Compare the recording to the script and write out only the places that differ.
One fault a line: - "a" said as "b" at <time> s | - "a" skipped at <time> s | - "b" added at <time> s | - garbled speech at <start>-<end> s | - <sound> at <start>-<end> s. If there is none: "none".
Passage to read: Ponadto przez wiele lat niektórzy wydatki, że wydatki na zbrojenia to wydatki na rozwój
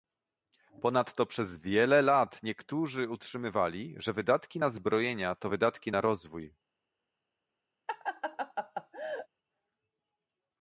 - "wydatki" said as "utrzymywali" at 3.1 s
- laugh at 7.9-9.3 s